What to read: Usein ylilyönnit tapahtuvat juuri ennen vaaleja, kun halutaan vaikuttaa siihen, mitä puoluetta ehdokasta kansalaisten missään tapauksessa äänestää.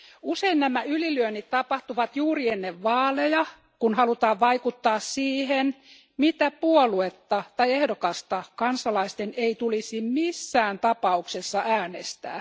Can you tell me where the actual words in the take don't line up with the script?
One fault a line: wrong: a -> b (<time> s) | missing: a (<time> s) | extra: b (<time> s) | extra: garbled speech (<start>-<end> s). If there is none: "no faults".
extra: nämä (0.6 s)
extra: tai (7.6 s)
extra: ei tulisi (9.4 s)